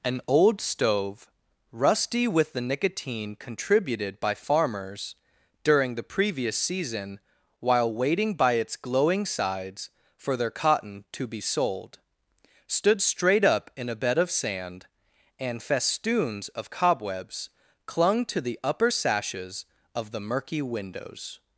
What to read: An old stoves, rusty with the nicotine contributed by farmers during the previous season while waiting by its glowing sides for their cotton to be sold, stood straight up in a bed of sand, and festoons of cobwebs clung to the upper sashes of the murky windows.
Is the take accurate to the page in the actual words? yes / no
no